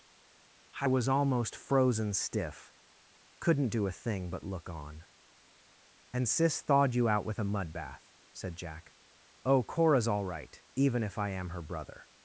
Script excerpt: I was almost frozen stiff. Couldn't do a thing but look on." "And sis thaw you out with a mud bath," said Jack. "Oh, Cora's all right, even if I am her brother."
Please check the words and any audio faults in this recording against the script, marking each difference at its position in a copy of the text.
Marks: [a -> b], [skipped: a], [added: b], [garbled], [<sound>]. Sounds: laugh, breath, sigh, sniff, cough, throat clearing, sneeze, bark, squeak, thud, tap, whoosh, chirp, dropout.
I was almost frozen stiff. Couldn't do a thing but look on." "And sis [thaw -> thawed] you out with a mud bath," said Jack. "Oh, Cora's all right, even if I am her brother."